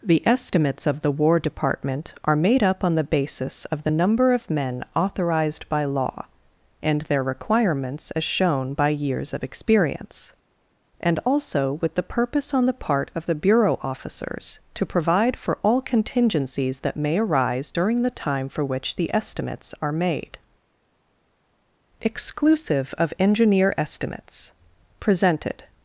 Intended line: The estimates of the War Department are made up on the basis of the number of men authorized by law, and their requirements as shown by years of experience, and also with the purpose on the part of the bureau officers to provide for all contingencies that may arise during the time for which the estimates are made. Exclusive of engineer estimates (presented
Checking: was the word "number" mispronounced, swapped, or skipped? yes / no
no